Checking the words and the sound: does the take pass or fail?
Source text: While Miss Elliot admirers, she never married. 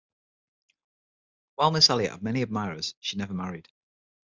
fail